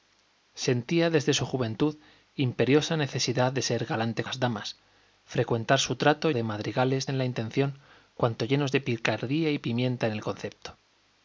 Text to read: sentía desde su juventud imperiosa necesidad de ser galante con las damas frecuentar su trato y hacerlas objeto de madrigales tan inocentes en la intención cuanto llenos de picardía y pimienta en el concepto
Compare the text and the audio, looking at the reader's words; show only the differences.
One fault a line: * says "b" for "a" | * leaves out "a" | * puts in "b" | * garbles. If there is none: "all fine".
* leaves out "con"
* leaves out "y hacerlas objeto"
* leaves out "tan inocentes"